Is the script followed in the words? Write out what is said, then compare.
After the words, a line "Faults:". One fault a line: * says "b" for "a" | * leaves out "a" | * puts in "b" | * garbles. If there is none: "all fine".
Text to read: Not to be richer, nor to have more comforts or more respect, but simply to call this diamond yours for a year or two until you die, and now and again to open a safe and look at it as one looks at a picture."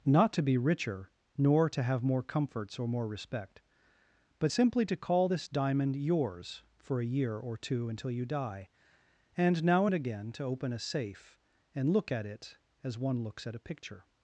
Not to be richer, nor to have more comforts or more respect, but simply to call this diamond yours for a year or two until you die, and now and again to open a safe and look at it as one looks at a picture."
Faults:
all fine